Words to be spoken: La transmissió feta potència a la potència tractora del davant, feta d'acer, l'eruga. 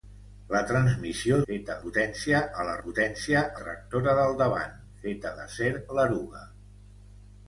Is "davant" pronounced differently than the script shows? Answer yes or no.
no